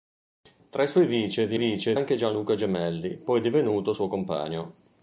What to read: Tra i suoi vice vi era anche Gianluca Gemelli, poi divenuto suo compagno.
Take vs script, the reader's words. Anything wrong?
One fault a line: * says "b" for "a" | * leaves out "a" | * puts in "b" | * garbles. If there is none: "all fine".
* says "vice" for "era"